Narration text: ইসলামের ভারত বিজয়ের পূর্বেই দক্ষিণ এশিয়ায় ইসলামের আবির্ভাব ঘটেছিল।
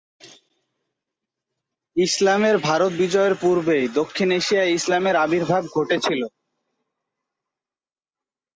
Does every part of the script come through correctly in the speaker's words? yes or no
yes